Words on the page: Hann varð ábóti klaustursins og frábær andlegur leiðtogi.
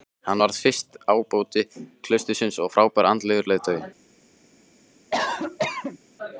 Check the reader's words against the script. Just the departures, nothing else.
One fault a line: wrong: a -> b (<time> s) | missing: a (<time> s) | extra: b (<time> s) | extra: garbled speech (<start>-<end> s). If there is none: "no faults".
extra: fyrsti (0.6 s)